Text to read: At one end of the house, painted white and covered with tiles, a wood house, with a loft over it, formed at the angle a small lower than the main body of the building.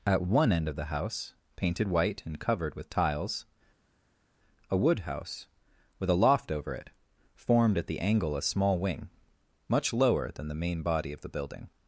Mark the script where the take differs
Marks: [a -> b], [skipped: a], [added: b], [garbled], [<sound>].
At one end of the house, painted white and covered with tiles, a wood house, with a loft over it, formed at the angle a small [added: wing much] lower than the main body of the building.